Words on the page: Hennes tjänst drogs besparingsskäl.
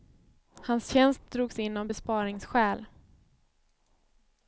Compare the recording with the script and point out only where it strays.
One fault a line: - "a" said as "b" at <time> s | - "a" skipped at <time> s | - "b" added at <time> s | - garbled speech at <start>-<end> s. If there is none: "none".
- "Hennes" said as "Hans" at 0.6 s
- "in av" added at 1.6 s